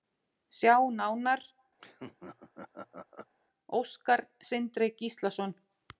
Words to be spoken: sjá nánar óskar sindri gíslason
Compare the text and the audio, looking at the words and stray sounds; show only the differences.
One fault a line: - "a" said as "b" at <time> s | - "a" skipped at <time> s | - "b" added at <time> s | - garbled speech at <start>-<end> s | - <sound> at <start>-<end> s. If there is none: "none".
- laugh at 1.8-3.3 s